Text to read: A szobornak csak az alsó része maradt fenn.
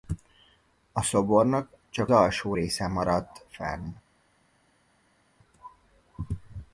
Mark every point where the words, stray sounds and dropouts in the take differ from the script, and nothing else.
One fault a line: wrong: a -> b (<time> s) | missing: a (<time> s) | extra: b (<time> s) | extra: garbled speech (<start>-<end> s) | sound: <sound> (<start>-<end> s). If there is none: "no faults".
missing: az (2.1 s)